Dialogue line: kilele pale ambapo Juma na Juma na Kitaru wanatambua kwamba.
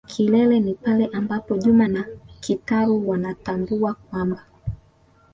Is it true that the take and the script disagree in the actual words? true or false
true